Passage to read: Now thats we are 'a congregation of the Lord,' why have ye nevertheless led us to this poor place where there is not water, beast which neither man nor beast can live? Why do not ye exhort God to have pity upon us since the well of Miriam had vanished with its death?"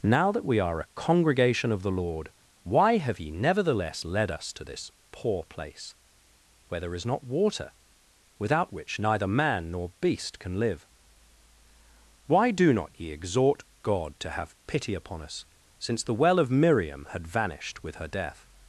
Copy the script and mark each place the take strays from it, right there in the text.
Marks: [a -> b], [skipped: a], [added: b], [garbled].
Now [thats -> that] we are 'a congregation of the Lord,' why have ye nevertheless led us to this poor place where there is not water, [beast -> without] which neither man nor beast can live? Why do not ye exhort God to have pity upon us since the well of Miriam had vanished with [its -> her] death?"